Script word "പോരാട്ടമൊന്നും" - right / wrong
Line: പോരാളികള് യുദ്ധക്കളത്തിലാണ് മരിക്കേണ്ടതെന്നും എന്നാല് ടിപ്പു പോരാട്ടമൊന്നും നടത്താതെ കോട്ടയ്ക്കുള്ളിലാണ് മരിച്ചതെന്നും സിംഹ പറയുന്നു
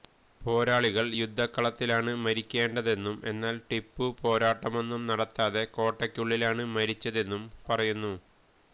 right